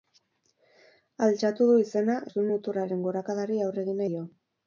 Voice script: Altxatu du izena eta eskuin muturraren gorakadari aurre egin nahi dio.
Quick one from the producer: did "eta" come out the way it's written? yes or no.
no